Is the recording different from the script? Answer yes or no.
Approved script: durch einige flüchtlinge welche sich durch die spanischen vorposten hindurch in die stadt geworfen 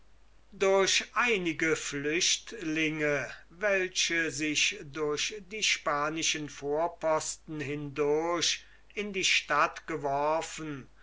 no